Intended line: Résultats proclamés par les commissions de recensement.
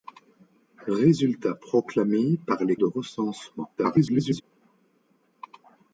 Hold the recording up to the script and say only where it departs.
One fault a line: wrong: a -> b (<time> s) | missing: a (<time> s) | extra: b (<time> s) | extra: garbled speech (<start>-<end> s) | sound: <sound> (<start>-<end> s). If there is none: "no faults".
missing: commissions (2.8 s)
extra: garbled speech (3.8-4.4 s)